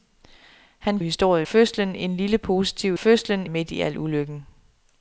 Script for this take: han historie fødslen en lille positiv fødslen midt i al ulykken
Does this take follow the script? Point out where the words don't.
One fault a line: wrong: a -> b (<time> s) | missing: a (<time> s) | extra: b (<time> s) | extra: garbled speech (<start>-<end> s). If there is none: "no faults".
no faults